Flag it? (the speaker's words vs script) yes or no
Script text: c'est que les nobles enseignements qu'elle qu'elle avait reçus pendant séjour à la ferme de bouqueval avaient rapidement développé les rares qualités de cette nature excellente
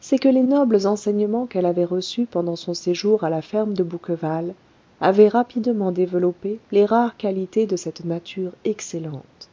yes